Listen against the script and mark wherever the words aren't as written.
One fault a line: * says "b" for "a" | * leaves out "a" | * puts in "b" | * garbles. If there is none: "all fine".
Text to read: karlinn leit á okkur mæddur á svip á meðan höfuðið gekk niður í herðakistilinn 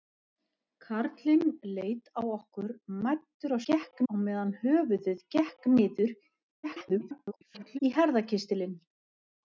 * says "gekk" for "svip"
* garbles